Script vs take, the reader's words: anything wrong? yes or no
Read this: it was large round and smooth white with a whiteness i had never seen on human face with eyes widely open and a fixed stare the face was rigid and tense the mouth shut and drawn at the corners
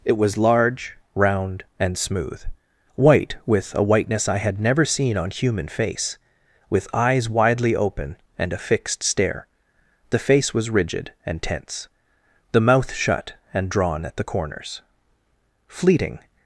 yes